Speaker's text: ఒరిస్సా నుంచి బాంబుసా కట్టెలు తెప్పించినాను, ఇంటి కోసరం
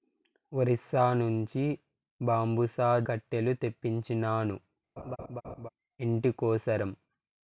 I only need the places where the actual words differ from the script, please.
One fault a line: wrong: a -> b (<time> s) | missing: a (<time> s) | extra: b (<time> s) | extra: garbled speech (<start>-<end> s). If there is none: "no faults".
no faults